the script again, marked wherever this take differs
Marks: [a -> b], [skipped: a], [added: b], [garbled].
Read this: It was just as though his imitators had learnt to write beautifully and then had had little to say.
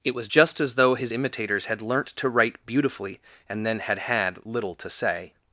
It was just as though his imitators had learnt to write beautifully and then had had little to say.